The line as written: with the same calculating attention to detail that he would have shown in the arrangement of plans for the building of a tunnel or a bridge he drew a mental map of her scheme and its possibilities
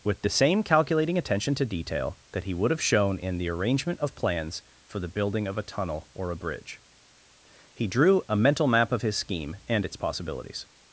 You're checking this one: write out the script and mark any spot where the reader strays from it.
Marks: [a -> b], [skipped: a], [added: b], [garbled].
with the same calculating attention to detail that he would have shown in the arrangement of plans for the building of a tunnel or a bridge he drew a mental map of [her -> his] scheme and its possibilities